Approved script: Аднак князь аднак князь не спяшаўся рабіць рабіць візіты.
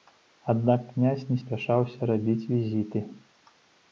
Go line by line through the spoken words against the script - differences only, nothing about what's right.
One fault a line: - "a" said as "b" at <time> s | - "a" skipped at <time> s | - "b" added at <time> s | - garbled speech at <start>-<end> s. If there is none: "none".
- "аднак князь" skipped at 1.2 s
- "рабіць" skipped at 2.5 s